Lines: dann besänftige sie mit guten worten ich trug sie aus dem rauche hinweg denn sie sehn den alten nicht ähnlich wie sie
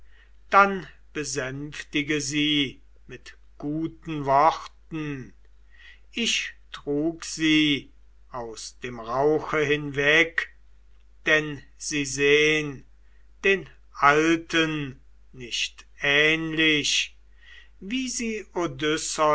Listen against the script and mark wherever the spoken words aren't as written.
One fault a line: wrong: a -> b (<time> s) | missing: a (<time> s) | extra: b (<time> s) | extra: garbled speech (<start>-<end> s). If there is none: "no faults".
no faults